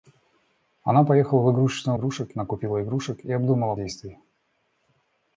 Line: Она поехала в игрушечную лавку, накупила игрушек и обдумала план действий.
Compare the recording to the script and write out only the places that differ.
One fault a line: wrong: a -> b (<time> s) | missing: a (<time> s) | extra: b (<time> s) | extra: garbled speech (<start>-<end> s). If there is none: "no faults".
wrong: лавку -> игрушек (1.9 s)
missing: план (3.7 s)